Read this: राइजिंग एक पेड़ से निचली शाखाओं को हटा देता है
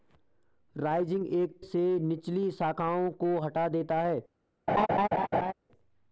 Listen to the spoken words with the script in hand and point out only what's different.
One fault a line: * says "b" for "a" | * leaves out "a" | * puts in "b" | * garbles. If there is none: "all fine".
* leaves out "पेड़"